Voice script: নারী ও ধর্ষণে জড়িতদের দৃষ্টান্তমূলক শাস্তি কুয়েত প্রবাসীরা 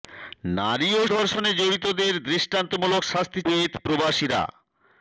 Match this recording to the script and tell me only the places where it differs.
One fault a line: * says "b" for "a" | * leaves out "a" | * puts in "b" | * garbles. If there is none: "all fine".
all fine